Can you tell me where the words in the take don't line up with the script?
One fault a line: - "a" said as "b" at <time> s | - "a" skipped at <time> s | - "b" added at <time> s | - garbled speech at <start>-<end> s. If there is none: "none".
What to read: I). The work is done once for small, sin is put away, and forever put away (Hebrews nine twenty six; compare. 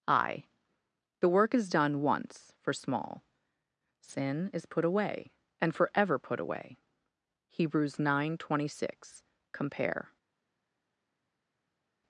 none